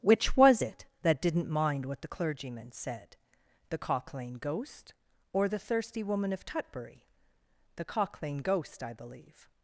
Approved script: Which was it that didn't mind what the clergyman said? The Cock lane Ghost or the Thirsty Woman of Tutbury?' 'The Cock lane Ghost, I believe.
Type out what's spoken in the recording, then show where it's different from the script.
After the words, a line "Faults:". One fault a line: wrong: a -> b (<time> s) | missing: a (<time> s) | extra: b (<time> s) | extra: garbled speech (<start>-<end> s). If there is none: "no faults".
Which was it that didn't mind what the clergyman said? The Cock lane Ghost or the Thirsty Woman of Tutbury?' 'The Cock lane Ghost, I believe.
Faults:
no faults